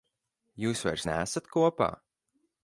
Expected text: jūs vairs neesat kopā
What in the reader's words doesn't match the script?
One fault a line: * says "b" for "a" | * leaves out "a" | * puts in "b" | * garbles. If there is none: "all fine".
all fine